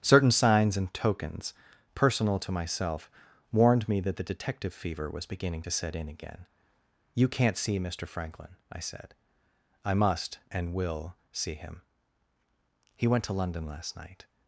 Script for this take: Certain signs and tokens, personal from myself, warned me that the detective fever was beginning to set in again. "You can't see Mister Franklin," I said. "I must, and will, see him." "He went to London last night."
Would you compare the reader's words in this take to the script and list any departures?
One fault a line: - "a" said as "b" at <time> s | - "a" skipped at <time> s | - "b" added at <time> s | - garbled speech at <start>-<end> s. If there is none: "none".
- "from" said as "to" at 2.4 s